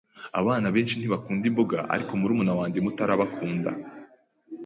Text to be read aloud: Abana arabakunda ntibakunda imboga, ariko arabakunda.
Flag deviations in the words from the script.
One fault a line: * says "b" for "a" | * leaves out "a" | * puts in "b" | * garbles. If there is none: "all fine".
* says "benshi" for "arabakunda"
* puts in "murumuna wanjye muto"